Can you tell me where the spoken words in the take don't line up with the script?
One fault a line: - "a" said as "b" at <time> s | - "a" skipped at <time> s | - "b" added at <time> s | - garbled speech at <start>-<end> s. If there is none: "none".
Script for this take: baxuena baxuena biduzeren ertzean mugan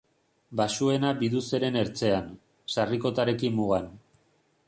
- "baxuena" skipped at 1.1 s
- "sarrikotarekin" added at 2.7 s